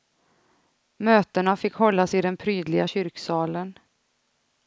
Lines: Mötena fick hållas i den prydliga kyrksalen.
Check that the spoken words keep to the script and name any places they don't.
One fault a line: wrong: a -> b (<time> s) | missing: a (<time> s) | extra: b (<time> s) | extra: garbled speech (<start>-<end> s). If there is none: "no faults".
no faults